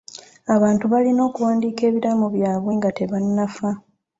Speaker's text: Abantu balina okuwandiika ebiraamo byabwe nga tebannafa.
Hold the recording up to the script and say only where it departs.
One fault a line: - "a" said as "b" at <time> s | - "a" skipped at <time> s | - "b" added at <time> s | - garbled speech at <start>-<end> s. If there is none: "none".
none